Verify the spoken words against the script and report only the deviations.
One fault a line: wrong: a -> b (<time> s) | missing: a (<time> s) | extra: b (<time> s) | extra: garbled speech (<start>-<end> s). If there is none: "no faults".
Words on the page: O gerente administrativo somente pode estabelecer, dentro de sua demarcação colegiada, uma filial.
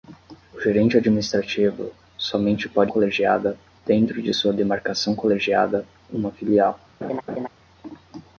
wrong: estabelecer -> colegiada (2.9 s)